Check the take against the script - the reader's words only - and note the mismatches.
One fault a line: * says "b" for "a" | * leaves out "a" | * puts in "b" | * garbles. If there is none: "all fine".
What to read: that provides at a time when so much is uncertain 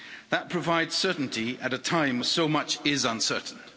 * puts in "certainty"